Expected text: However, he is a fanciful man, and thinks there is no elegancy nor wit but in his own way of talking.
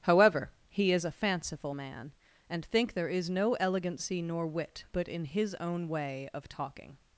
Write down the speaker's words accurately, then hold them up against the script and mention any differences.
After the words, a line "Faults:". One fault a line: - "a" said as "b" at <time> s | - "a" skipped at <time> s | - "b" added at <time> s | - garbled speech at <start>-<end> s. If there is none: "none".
However, he is a fanciful man, and think there is no elegancy nor wit but in his own way of talking.
Faults:
- "thinks" said as "think" at 2.6 s